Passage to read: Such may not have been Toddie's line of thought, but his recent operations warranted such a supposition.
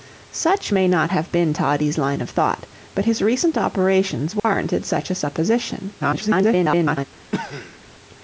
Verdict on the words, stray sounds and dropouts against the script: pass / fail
fail